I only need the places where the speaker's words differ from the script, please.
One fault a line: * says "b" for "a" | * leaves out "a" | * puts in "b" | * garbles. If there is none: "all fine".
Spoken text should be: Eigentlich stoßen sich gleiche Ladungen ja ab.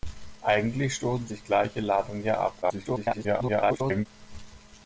* garbles